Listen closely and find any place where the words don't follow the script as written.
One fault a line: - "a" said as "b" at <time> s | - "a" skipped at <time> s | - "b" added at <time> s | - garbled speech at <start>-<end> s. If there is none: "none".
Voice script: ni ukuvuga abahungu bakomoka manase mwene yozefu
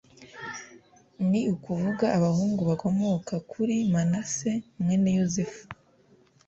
- "kuri" added at 3.5 s